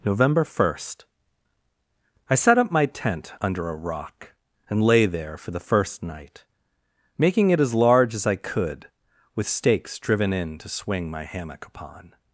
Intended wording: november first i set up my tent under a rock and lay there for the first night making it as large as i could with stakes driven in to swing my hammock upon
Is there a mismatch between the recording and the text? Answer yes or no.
no